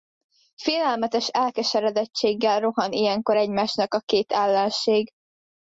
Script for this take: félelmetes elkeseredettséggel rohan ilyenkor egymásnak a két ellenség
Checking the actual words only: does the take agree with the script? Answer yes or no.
yes